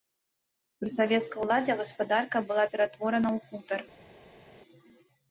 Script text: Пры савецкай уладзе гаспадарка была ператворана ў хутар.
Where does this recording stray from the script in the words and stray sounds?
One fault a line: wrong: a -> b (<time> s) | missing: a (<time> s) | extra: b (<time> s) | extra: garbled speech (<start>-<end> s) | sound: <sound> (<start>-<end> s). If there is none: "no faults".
no faults